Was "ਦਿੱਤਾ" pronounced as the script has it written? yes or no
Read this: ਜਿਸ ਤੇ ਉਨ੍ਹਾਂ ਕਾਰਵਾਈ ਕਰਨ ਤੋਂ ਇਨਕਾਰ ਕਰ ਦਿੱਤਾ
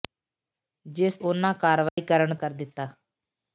yes